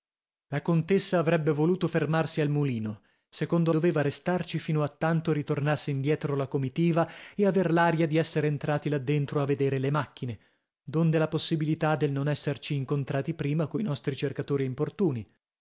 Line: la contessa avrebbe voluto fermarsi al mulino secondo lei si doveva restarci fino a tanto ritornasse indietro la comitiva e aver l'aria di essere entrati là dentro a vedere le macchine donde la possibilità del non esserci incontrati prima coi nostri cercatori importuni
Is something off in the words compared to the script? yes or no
yes